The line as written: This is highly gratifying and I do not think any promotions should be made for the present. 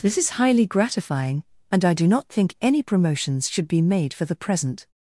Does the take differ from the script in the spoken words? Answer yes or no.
no